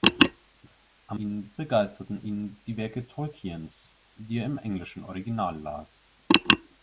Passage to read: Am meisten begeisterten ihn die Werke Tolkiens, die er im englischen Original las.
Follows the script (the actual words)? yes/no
no